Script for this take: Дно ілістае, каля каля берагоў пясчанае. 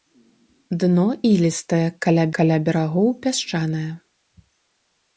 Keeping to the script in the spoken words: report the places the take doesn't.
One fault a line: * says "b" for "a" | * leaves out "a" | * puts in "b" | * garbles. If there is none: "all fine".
all fine